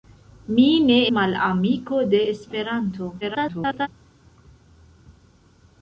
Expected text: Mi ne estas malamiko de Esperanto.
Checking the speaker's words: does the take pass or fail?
fail